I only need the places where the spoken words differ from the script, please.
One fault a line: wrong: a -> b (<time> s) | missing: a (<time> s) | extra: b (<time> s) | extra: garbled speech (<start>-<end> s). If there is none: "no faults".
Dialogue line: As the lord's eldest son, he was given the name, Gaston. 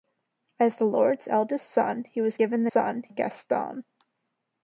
wrong: name -> son (2.7 s)